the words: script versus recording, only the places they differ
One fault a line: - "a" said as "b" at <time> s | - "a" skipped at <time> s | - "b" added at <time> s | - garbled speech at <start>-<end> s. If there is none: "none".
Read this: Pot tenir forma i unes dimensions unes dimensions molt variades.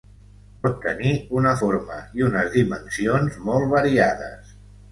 - "una" added at 1.4 s
- "unes dimensions" skipped at 3.4 s